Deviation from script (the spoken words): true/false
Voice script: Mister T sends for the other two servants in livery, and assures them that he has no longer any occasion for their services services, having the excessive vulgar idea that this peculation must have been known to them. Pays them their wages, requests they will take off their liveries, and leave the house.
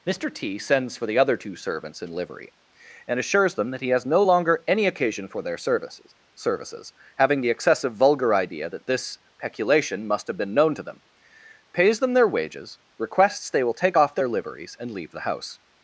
false